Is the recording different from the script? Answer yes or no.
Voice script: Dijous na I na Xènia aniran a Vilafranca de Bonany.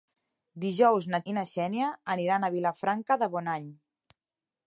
no